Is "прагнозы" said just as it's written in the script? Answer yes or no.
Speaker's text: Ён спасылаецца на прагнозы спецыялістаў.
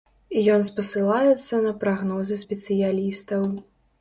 yes